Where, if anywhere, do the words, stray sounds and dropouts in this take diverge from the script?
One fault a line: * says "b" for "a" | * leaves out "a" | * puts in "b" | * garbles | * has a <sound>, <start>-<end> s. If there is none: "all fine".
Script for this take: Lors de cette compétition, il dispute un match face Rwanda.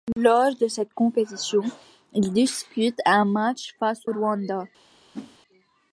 * has a whoosh, 5.1-5.4 s